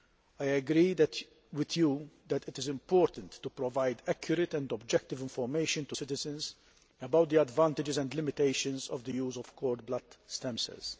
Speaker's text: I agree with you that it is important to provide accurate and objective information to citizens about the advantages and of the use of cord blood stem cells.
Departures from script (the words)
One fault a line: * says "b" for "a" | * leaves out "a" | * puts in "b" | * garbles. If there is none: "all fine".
* puts in "limitations"